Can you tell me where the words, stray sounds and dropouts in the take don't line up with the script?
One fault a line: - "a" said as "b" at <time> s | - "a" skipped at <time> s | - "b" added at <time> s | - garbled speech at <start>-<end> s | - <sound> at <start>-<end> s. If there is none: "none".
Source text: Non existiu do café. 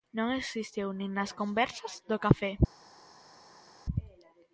- "nin nas conversas" added at 0.9 s